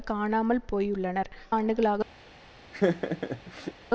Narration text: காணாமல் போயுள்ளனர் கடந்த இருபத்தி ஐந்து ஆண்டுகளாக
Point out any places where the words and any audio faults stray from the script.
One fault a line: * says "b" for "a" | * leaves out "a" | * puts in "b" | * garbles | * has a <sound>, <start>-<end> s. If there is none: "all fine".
* leaves out "கடந்த இருபத்தி ஐந்து"
* has a laugh, 2.7-3.7 s